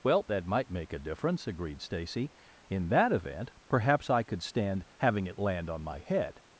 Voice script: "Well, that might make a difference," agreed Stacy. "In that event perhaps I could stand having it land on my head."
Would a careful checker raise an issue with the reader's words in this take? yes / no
no